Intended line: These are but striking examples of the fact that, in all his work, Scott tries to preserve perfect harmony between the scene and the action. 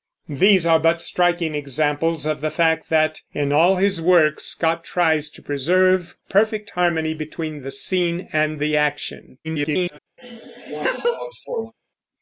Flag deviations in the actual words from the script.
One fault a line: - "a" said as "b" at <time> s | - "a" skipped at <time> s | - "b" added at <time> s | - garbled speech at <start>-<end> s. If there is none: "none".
- garbled speech at 9.4-10.0 s